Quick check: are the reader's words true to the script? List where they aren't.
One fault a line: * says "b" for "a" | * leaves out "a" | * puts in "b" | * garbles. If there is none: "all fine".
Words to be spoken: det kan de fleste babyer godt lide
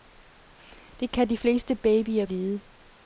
* leaves out "godt"